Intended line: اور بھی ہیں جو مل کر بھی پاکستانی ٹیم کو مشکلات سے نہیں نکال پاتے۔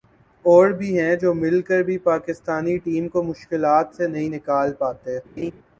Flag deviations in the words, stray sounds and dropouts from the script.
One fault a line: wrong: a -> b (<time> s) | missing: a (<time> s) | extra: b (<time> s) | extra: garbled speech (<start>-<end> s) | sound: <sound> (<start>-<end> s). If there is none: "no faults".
sound: laugh (5.4-5.5 s)